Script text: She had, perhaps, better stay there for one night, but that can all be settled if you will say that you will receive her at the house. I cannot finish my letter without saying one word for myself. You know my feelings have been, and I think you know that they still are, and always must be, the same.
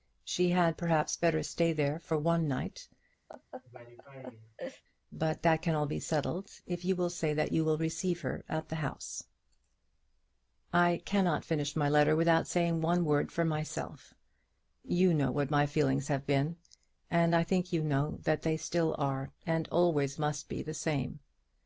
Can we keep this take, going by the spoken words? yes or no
no